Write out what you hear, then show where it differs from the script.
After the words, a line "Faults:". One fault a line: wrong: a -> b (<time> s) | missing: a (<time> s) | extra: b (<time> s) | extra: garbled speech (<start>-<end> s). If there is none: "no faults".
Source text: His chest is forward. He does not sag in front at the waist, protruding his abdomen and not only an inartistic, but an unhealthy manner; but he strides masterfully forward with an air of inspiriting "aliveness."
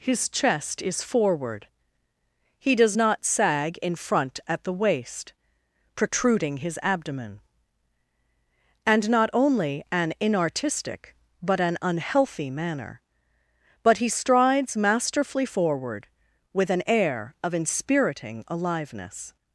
His chest is forward. He does not sag in front at the waist, protruding his abdomen and not only an inartistic, but an unhealthy manner; but he strides masterfully forward with an air of inspiriting "aliveness."
Faults:
no faults